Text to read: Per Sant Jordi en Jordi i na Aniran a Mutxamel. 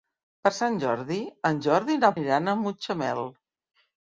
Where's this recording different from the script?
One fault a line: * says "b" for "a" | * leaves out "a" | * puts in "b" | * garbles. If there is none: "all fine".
all fine